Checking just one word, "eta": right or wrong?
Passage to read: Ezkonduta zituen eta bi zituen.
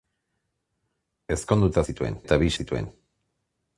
right